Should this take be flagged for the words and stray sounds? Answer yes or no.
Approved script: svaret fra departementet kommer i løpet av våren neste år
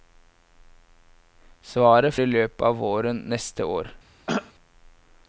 yes